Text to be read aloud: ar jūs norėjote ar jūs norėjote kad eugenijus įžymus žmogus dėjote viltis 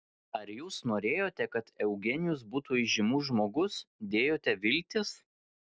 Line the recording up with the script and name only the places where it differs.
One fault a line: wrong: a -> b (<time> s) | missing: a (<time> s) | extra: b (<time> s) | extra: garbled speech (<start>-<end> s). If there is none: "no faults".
missing: ar jūs norėjote (1.5 s)
extra: būtų (2.5 s)